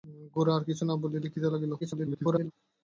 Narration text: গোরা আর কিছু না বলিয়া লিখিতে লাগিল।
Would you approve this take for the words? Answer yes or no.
no